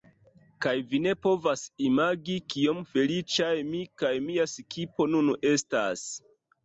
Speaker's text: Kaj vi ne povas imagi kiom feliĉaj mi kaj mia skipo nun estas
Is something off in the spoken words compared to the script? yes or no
no